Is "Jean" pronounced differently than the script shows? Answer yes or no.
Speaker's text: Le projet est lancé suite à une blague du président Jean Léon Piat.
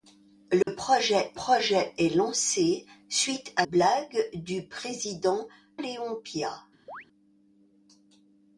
yes